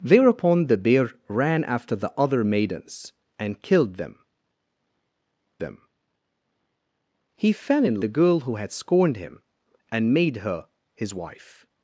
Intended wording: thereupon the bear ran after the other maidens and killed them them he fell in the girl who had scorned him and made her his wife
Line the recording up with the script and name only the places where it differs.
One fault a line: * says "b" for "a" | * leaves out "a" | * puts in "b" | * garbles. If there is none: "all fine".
all fine